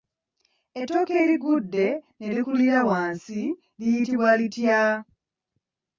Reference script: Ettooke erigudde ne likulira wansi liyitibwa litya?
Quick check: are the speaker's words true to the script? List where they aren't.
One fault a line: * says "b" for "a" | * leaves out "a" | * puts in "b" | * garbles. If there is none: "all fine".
all fine